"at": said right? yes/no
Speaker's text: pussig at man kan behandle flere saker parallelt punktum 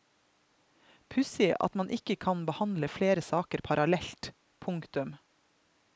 yes